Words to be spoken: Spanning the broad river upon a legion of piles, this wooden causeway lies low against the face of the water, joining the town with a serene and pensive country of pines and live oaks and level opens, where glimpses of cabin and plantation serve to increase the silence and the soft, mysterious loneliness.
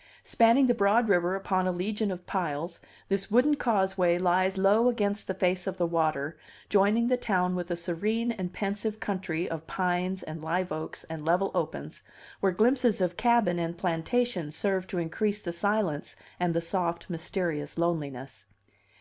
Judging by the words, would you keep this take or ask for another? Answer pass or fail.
pass